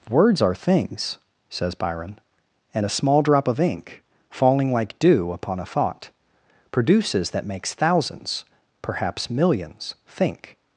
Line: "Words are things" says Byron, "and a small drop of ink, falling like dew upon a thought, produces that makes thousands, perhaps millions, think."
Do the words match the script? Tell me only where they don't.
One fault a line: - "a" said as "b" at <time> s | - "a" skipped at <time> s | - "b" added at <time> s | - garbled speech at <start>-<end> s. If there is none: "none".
none